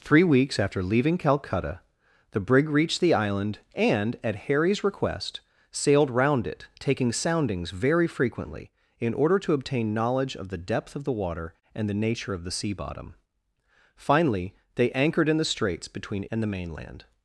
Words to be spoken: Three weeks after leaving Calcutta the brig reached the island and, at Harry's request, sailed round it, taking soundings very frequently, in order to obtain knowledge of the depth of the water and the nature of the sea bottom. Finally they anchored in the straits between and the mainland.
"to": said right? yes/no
yes